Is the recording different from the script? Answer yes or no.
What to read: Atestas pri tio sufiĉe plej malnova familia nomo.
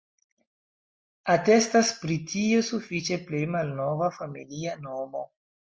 no